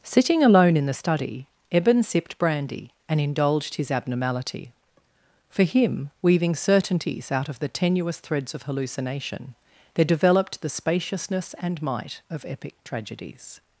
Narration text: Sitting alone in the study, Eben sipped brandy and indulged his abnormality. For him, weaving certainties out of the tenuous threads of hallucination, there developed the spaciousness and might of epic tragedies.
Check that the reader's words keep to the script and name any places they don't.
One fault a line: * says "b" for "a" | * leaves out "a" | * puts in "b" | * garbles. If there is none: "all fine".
all fine